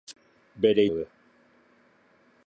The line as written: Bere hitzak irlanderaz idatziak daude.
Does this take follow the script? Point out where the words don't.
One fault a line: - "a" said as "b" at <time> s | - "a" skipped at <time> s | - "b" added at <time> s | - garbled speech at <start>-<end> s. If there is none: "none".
- "hitzak irlanderaz idatziak" skipped at 0.8 s